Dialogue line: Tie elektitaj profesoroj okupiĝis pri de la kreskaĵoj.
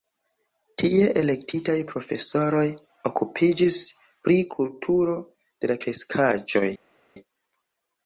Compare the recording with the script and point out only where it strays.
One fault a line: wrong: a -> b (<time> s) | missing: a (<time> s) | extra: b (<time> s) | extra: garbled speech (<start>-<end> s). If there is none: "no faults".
extra: kulturo (4.6 s)